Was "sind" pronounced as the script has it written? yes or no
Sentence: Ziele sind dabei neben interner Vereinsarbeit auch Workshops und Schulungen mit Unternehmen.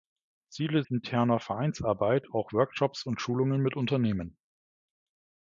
no